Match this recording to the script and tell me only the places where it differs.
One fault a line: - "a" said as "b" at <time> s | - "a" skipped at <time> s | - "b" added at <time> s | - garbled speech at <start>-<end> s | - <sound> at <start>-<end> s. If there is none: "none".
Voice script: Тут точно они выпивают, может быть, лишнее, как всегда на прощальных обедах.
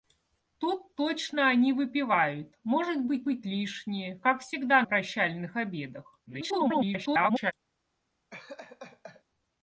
- "быть" added at 3.2 s
- "на" skipped at 4.8 s
- garbled speech at 6.3-7.5 s
- laugh at 8.3-9.2 s